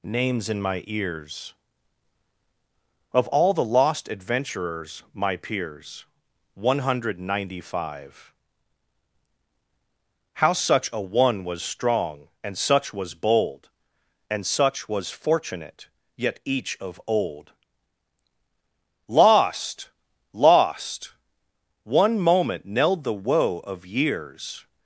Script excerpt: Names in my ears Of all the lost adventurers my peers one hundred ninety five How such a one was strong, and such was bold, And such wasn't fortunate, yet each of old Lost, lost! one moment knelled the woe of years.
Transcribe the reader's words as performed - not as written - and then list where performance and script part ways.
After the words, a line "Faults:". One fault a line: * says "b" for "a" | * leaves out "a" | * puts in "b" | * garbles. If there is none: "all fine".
Names in my ears Of all the lost adventurers my peers one hundred ninety five How such a one was strong, and such was bold, And such was fortunate, yet each of old Lost, lost! one moment knelled the woe of years.
Faults:
* says "was" for "wasn't"